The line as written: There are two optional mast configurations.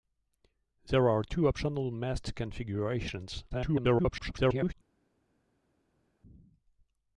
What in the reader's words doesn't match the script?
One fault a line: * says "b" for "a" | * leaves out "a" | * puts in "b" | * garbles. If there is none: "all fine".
* garbles